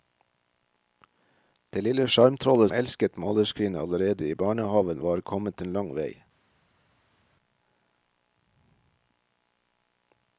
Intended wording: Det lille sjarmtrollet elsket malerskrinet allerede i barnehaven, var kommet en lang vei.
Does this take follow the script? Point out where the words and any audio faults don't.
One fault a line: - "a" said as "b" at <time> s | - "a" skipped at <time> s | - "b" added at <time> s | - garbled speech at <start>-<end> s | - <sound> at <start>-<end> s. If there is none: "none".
none